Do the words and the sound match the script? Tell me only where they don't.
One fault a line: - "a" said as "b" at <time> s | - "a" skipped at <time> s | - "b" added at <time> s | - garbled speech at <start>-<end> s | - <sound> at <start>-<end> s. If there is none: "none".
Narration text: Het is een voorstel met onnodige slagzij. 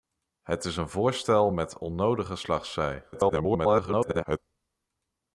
- garbled speech at 3.1-4.4 s